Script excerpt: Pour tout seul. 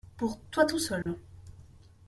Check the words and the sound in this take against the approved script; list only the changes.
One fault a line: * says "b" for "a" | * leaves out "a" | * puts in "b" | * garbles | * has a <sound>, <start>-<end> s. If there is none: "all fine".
* puts in "toi"
* has a dropout, 1.0-1.1 s